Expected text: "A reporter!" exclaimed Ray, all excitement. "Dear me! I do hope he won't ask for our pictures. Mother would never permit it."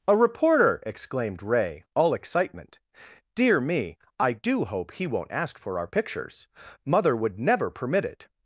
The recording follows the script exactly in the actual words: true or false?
true